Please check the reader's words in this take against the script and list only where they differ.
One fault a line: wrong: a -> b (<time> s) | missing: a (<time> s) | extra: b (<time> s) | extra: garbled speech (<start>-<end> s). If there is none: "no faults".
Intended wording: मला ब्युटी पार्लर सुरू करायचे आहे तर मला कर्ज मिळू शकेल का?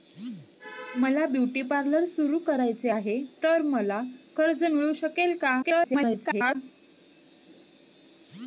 extra: garbled speech (5.6-6.6 s)